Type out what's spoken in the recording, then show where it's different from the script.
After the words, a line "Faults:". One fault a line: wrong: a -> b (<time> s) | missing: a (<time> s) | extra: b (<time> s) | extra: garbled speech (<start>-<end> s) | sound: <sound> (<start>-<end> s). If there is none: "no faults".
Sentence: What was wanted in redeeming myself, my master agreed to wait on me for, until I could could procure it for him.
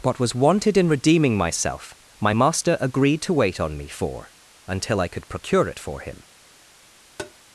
What was wanted in redeeming myself, my master agreed to wait on me for, until I could procure it for him.
Faults:
missing: could (5.3 s)
sound: tap (7.2-7.3 s)